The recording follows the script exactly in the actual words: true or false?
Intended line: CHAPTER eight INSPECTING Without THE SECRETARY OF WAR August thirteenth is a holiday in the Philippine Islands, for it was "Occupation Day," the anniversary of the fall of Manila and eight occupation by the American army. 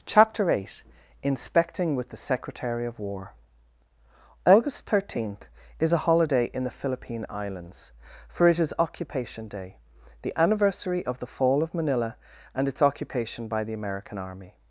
false